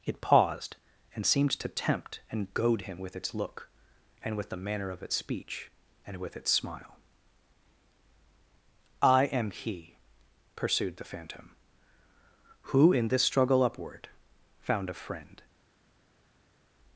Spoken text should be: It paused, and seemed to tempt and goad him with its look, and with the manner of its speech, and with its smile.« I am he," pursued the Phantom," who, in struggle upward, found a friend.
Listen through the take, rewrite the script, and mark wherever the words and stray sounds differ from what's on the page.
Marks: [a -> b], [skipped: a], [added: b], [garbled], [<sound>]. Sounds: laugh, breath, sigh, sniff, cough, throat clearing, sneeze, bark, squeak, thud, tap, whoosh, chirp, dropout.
It paused, and seemed to tempt and goad him with its look, and with the manner of its speech, and with its smile.« I am he," pursued the Phantom," who, in [added: this] struggle upward, found a friend.